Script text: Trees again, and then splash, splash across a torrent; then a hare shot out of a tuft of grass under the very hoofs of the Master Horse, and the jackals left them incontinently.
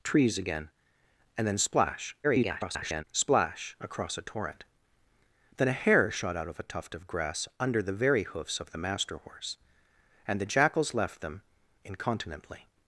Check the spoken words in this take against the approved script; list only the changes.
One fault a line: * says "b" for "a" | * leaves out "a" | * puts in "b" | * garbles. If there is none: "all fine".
* garbles